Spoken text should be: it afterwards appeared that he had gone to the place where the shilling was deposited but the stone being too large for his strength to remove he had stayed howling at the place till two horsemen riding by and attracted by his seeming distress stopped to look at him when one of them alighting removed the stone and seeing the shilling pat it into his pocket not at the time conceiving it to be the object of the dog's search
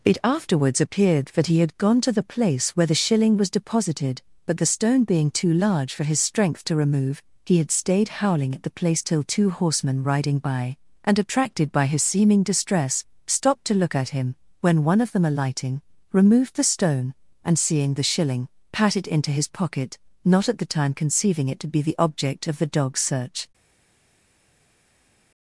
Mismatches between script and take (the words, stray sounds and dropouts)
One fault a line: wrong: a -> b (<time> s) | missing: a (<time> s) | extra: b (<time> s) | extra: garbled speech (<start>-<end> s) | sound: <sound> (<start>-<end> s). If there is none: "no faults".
no faults